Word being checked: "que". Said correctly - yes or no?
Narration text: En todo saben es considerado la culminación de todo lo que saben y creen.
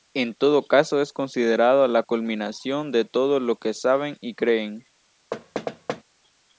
yes